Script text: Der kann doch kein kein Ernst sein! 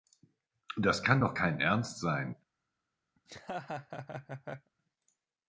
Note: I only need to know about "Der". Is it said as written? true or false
false